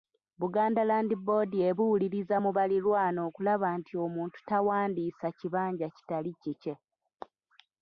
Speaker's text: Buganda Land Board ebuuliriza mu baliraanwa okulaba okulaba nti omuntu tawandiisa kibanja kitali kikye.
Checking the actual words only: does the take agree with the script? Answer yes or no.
no